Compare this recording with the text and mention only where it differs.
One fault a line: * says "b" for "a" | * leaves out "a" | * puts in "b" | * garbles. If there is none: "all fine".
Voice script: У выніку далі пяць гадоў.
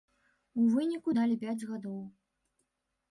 all fine